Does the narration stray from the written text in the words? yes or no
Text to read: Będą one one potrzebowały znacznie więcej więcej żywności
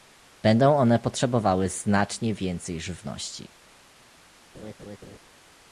yes